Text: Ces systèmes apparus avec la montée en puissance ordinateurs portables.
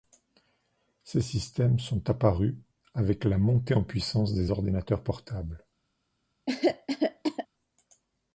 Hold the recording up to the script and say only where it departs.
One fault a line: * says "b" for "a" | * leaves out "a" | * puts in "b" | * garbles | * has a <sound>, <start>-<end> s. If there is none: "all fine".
* puts in "sont"
* puts in "des"
* has a cough, 6.5-7.5 s